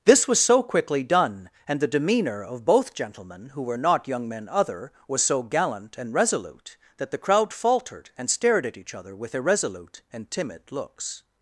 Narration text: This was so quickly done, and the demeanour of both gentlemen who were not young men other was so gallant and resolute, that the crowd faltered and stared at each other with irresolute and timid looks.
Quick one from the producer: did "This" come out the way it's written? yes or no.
yes